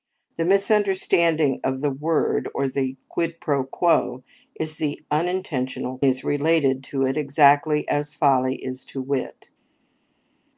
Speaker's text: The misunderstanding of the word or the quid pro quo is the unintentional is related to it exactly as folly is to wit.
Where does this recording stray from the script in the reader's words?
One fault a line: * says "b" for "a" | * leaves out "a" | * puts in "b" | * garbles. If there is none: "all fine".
all fine